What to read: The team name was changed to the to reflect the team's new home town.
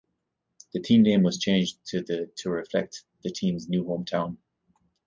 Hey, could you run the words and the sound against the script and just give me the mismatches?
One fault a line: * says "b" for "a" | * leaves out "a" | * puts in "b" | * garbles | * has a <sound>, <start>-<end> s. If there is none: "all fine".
all fine